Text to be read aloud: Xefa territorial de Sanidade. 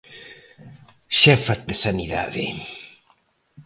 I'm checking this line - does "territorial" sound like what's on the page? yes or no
no